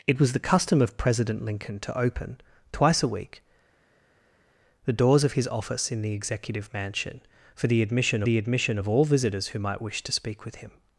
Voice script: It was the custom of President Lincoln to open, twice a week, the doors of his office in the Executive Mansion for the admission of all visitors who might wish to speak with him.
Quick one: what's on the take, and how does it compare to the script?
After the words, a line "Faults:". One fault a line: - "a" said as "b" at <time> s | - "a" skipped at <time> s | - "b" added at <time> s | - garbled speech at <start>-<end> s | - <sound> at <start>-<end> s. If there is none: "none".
It was the custom of President Lincoln to open, twice a week, the doors of his office in the Executive Mansion for the admission the admission of all visitors who might wish to speak with him.
Faults:
- "the admission" added at 8.2 s